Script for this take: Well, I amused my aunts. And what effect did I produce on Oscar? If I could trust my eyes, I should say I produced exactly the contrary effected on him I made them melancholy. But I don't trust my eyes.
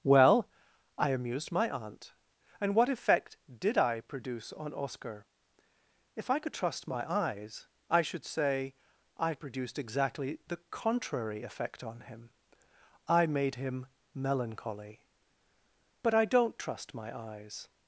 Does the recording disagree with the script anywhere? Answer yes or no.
yes